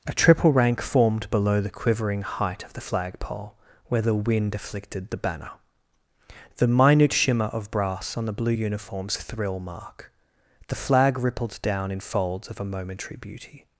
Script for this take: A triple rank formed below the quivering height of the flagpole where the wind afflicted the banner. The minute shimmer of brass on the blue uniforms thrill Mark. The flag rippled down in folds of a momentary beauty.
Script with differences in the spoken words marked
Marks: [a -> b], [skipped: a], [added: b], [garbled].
A triple rank formed below the quivering height of the flagpole where the wind afflicted the banner. The minute shimmer of brass on the blue uniforms thrill Mark. The flag rippled down in folds of a momentary beauty.